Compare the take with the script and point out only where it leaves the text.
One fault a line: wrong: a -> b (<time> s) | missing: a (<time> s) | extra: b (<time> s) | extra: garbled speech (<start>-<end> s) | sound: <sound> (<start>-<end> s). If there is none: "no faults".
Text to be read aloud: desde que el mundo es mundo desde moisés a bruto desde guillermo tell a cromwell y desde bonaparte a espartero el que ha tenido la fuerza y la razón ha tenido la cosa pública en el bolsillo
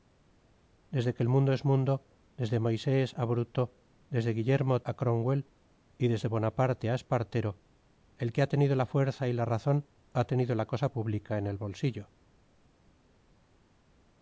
missing: tell (4.8 s)